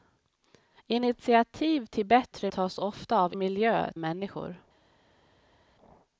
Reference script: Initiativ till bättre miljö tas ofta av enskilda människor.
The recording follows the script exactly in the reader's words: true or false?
false